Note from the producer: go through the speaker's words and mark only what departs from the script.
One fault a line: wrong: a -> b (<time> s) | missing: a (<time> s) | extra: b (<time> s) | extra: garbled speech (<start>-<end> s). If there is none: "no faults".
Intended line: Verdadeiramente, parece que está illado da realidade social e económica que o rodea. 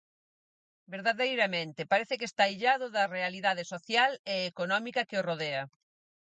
no faults